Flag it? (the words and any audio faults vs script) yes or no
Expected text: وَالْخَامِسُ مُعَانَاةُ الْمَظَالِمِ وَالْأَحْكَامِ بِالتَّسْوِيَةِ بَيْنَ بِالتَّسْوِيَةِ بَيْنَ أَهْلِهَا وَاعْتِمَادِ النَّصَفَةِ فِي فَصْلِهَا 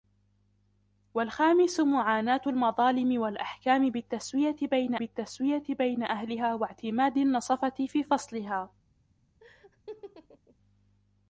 yes